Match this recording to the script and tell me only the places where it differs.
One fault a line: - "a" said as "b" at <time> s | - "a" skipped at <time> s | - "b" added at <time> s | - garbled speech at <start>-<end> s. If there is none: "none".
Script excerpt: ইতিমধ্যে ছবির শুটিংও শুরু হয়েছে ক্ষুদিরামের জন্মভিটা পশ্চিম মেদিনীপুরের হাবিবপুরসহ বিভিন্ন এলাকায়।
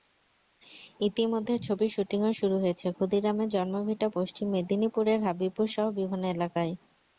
none